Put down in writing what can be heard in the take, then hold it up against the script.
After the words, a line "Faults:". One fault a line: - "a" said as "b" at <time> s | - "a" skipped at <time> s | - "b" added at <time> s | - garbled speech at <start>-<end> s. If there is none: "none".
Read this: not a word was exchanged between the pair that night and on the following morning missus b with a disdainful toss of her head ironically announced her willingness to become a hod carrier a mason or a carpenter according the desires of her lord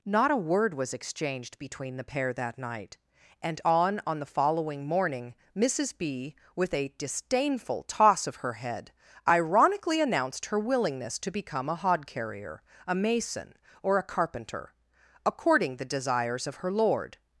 not a word was exchanged between the pair that night and on on the following morning missus b with a disdainful toss of her head ironically announced her willingness to become a hod carrier a mason or a carpenter according the desires of her lord
Faults:
- "on" added at 4.1 s